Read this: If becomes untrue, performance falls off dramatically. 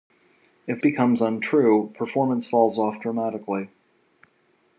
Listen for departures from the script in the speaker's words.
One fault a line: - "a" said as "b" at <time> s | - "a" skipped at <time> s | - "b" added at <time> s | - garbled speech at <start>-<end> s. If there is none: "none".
none